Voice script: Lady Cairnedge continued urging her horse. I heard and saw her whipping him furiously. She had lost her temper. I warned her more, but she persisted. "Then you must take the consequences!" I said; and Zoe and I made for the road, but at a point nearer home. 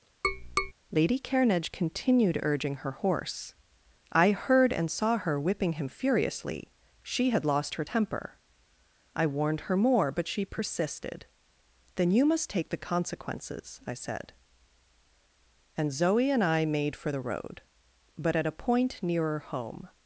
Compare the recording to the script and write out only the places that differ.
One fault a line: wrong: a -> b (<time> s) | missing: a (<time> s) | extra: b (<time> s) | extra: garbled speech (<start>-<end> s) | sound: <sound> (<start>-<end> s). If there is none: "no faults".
sound: tap (0.2-0.7 s)